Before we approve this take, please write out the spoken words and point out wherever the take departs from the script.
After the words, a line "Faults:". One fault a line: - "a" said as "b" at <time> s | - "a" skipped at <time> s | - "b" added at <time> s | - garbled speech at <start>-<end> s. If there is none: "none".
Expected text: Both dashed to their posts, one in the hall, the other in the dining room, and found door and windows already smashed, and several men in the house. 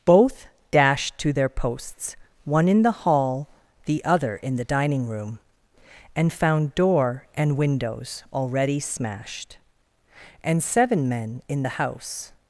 Both dashed to their posts, one in the hall, the other in the dining room, and found door and windows already smashed, and seven men in the house.
Faults:
- "several" said as "seven" at 10.6 s